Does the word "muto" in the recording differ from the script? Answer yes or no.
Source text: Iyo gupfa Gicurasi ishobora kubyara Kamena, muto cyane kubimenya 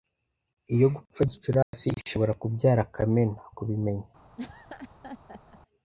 yes